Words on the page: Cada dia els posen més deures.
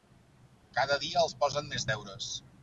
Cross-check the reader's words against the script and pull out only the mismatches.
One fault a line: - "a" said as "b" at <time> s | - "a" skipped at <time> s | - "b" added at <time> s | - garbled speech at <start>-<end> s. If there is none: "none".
none